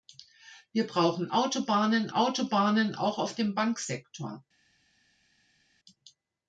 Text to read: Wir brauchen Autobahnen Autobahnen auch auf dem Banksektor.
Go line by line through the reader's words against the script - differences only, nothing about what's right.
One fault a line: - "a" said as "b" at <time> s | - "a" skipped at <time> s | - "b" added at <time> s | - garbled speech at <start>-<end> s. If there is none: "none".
none